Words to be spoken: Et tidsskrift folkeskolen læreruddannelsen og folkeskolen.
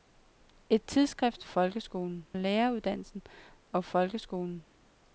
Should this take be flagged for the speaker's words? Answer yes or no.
no